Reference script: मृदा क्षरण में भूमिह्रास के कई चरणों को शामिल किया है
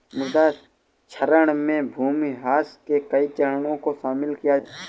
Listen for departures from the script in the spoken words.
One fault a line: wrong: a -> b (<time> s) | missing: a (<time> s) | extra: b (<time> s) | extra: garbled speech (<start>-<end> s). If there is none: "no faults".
no faults